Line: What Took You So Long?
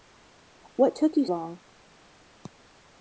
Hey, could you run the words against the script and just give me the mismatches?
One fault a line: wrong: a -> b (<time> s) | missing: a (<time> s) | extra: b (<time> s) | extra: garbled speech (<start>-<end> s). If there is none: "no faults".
missing: So (1.3 s)